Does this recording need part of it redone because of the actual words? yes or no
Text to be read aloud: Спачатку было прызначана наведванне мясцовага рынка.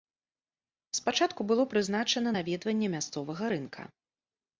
no